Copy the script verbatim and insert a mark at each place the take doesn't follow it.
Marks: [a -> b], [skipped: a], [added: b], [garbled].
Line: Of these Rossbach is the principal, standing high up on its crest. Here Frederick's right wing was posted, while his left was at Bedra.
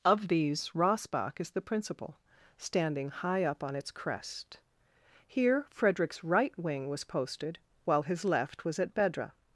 Of these Rossbach is the principal, standing high up on its crest. Here Frederick's right wing was posted, while his left was at Bedra.